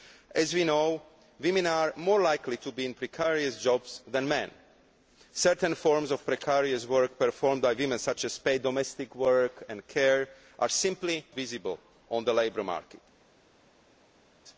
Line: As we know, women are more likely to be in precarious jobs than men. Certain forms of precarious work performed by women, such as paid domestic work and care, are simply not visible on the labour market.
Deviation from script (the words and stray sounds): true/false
true